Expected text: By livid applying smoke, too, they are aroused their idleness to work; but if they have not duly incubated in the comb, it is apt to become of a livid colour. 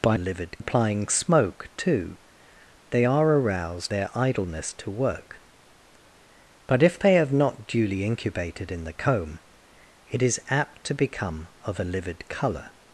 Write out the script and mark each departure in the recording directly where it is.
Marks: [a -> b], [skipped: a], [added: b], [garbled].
By livid applying smoke, too, they are aroused their idleness to work; but if they have not duly incubated in the comb, it is apt to become of a livid colour.